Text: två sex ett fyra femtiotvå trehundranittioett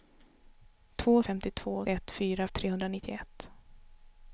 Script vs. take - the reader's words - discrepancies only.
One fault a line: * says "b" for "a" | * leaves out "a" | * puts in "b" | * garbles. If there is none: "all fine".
* says "femtiotvå" for "sex"
* leaves out "femtiotvå"